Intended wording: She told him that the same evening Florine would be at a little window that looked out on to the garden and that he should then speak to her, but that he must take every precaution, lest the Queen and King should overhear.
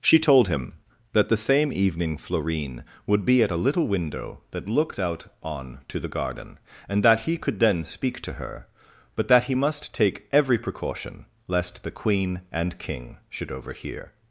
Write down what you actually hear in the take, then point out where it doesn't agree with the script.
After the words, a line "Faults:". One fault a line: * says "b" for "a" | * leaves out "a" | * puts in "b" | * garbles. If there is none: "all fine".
She told him that the same evening Florine would be at a little window that looked out on to the garden and that he could then speak to her, but that he must take every precaution, lest the Queen and King should overhear.
Faults:
* says "could" for "should"